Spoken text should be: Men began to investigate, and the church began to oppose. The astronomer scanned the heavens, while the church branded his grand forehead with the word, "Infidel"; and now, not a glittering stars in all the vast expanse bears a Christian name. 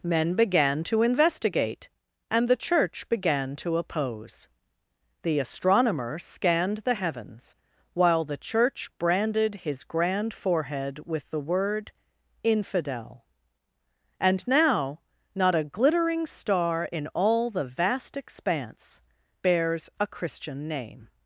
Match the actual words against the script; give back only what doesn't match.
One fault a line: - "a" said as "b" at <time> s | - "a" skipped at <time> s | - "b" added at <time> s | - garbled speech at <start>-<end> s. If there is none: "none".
- "stars" said as "star" at 16.2 s